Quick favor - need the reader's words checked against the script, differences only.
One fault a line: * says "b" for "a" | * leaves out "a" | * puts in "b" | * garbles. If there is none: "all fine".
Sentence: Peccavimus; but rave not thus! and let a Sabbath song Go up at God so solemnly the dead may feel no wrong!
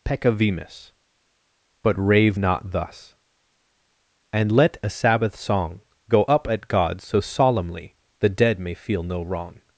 all fine